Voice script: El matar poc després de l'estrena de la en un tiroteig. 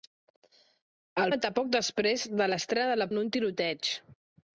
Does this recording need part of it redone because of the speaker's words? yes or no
no